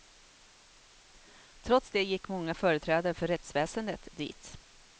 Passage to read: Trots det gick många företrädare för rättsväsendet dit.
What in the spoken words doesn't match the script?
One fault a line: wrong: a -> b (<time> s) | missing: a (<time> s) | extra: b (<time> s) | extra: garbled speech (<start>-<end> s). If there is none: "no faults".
no faults